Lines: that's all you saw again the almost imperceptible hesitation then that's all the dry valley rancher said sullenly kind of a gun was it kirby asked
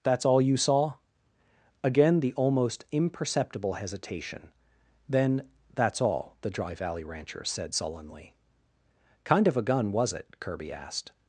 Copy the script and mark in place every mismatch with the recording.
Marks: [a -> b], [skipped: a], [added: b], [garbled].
that's all you saw again the almost imperceptible hesitation then that's all the dry valley rancher said sullenly kind of a gun was it kirby asked